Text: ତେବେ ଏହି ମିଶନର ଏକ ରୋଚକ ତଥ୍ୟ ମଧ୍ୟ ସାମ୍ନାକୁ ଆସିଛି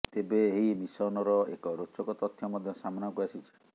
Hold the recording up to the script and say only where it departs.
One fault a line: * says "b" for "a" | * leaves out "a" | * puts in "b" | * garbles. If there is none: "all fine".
all fine